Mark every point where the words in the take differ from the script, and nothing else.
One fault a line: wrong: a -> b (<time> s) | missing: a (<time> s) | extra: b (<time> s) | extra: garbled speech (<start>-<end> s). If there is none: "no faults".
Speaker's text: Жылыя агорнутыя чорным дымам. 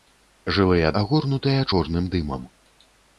no faults